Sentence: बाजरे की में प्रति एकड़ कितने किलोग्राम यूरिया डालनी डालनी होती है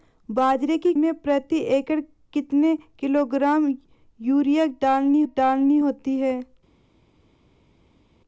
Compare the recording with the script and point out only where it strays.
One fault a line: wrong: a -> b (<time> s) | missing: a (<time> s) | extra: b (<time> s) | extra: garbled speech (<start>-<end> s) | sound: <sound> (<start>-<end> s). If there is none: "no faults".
no faults